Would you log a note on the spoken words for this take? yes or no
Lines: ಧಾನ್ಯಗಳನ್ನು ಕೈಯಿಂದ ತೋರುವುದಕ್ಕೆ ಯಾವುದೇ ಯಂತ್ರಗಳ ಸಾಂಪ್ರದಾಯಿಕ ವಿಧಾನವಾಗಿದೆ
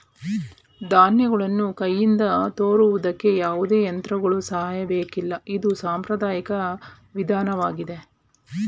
yes